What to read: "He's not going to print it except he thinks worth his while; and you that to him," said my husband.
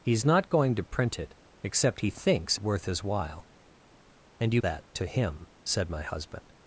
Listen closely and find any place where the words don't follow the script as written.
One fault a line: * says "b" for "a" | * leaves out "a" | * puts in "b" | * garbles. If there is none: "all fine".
all fine